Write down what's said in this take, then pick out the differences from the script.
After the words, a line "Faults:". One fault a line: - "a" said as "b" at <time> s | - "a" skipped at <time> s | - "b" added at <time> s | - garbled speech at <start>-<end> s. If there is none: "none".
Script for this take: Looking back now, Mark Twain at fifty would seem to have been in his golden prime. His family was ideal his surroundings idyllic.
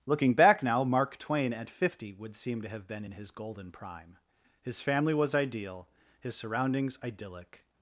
Looking back now, Mark Twain at fifty would seem to have been in his golden prime. His family was ideal his surroundings idyllic.
Faults:
none